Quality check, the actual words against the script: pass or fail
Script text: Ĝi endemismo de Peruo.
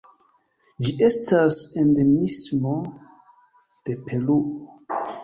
fail